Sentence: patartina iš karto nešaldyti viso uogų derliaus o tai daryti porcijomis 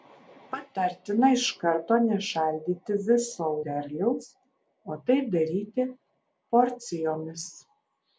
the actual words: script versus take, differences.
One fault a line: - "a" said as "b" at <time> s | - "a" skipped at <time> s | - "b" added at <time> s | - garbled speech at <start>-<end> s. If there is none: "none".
- "uogų" skipped at 3.5 s